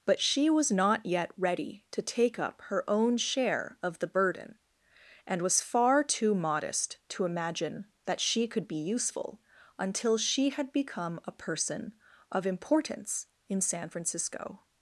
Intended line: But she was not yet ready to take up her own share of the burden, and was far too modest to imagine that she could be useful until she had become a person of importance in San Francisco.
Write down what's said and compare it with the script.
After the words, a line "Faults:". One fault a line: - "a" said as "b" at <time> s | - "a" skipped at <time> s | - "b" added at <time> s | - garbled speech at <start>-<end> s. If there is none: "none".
But she was not yet ready to take up her own share of the burden, and was far too modest to imagine that she could be useful until she had become a person of importance in San Francisco.
Faults:
none